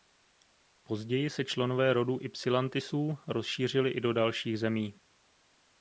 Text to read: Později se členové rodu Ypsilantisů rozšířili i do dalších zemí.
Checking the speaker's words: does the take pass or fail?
pass